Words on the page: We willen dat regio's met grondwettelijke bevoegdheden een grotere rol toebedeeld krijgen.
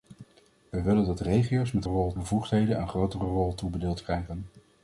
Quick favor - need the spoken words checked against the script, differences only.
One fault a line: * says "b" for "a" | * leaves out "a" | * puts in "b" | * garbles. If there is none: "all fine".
* says "rol" for "grondwettelijke"